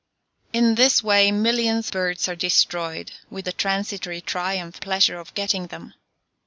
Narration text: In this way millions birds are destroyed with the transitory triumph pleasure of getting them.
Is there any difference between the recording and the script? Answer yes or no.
no